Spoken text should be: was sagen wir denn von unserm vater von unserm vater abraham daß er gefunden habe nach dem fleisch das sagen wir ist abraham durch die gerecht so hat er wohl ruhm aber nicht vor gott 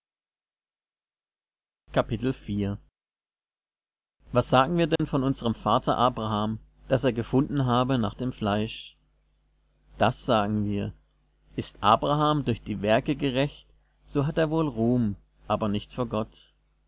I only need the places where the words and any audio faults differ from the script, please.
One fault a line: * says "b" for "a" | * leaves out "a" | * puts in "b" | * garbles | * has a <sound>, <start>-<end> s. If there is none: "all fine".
* has a dropout, 5.0-5.0 s
* leaves out "von unserm vater"
* puts in "werke"